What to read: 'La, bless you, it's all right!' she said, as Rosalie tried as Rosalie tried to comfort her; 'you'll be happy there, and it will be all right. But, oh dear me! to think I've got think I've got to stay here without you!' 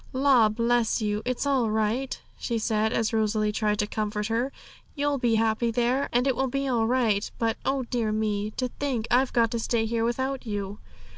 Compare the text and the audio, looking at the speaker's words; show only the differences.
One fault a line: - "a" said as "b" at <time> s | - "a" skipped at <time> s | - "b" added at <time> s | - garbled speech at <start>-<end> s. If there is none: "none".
- "as Rosalie tried" skipped at 3.8 s
- "think I've got" skipped at 9.5 s